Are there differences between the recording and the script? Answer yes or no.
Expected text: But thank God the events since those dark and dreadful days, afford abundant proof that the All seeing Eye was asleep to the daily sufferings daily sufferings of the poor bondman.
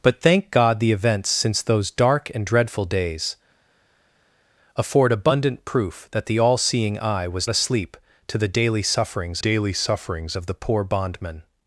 no